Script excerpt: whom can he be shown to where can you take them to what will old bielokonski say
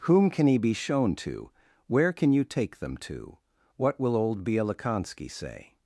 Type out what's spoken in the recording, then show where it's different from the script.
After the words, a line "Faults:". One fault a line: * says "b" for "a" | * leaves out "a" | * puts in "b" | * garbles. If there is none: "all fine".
whom can he be shown to where can you take them to what will old bielokonski say
Faults:
all fine